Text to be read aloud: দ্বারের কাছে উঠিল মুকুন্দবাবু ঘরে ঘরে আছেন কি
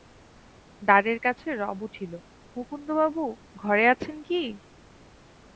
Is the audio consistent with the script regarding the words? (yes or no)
no